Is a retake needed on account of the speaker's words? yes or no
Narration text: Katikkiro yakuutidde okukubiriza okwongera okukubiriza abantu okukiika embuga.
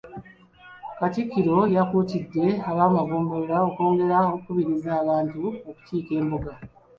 yes